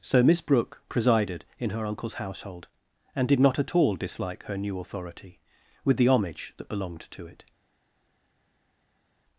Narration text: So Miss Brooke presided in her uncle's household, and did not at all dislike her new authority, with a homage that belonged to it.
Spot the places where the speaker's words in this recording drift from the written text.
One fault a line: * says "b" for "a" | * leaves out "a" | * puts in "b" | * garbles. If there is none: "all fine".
* says "the" for "a"